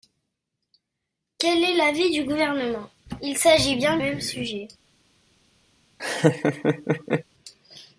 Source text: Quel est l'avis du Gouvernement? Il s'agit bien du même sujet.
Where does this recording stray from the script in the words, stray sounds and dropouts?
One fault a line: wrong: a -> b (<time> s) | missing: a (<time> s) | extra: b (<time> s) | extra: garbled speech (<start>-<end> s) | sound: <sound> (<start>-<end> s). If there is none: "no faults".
missing: du (4.0 s)
sound: laugh (6.0-7.2 s)